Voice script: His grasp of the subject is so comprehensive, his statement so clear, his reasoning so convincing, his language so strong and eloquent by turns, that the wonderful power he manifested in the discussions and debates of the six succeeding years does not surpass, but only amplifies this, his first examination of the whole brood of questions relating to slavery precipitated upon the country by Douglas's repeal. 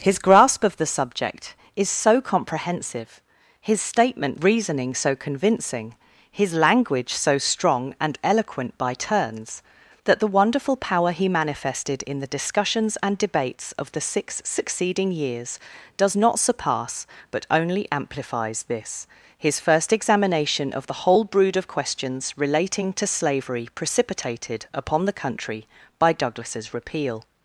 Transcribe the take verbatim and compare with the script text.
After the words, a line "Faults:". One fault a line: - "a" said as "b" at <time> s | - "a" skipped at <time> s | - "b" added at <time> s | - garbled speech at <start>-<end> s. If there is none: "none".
His grasp of the subject is so comprehensive, his statement reasoning so convincing, his language so strong and eloquent by turns, that the wonderful power he manifested in the discussions and debates of the six succeeding years does not surpass, but only amplifies this, his first examination of the whole brood of questions relating to slavery precipitated upon the country by Douglas's repeal.
Faults:
- "so clear his" skipped at 4.4 s